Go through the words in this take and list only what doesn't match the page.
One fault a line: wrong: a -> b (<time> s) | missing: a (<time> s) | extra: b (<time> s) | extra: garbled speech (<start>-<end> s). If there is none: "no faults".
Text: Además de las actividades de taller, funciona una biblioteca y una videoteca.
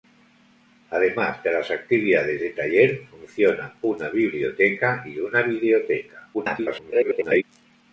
extra: garbled speech (6.3-7.4 s)